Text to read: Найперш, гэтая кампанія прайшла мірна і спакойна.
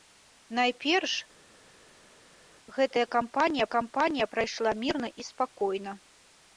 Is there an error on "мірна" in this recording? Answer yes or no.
no